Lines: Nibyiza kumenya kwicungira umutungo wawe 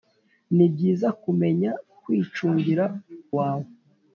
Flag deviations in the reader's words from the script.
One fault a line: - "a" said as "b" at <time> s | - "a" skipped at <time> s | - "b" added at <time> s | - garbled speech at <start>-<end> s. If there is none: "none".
- "umutungo" skipped at 2.9 s